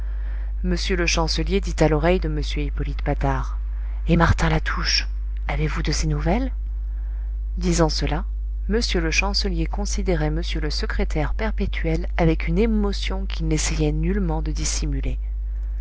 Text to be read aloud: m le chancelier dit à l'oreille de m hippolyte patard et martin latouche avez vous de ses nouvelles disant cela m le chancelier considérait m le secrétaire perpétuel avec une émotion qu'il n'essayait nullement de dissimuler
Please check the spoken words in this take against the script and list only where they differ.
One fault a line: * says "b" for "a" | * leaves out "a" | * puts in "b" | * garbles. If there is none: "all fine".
all fine